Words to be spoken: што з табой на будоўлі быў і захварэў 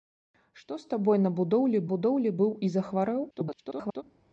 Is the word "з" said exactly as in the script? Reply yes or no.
yes